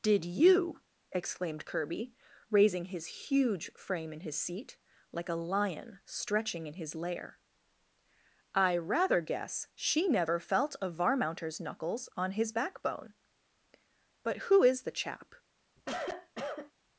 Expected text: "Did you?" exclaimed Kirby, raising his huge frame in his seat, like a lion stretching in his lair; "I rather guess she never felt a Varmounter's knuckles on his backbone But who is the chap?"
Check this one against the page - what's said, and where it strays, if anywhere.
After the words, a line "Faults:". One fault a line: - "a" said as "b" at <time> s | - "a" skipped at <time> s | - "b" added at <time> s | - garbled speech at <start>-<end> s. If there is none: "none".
"Did you?" exclaimed Kirby, raising his huge frame in his seat, like a lion stretching in his lair; "I rather guess she never felt a Varmounter's knuckles on his backbone But who is the chap?"
Faults:
none